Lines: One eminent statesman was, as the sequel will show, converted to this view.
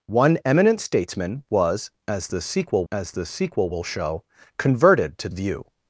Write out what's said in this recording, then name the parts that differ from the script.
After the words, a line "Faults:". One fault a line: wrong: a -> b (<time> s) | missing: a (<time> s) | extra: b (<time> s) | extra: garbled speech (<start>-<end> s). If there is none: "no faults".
One eminent statesman was, as the sequel as the sequel will show, converted to view.
Faults:
extra: as the sequel (2.9 s)
missing: this (5.3 s)